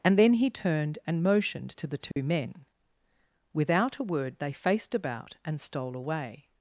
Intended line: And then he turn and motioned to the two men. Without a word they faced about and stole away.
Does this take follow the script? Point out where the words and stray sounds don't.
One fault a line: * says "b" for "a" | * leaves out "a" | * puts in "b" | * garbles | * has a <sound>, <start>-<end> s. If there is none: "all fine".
* says "turned" for "turn"
* has a dropout, 2.1-2.2 s